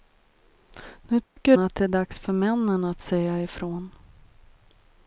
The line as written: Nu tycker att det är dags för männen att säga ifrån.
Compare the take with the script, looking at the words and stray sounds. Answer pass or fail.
fail